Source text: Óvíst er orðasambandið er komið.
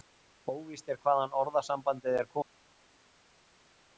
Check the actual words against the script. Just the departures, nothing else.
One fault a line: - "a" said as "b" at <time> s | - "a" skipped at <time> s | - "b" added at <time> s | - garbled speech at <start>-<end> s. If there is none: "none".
- "hvaðan" added at 1.0 s